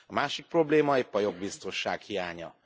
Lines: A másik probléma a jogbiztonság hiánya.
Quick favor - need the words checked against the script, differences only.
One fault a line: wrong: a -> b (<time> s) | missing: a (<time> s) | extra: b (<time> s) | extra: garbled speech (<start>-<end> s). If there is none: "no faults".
extra: épp (1.0 s)